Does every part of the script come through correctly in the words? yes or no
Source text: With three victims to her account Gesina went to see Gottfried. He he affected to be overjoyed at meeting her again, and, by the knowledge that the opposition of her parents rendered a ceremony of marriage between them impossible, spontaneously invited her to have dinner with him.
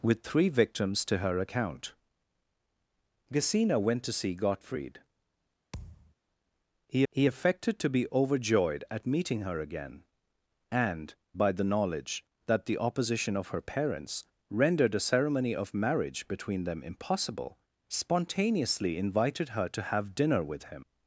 yes